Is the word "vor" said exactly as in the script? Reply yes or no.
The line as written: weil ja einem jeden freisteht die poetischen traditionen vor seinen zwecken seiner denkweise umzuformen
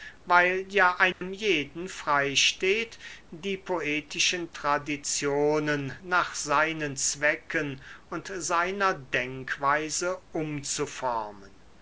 no